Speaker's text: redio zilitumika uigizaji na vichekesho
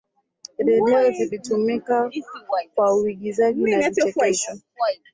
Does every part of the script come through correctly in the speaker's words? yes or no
no